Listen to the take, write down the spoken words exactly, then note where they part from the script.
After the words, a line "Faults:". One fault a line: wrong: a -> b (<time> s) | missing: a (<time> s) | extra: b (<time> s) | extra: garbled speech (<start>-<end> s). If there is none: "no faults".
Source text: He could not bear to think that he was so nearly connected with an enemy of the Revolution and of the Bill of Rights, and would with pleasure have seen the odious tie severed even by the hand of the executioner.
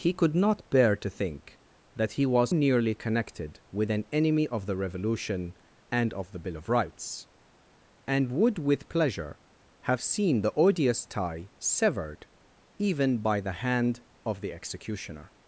He could not bear to think that he was nearly connected with an enemy of the Revolution and of the Bill of Rights, and would with pleasure have seen the odious tie severed even by the hand of the executioner.
Faults:
missing: so (2.5 s)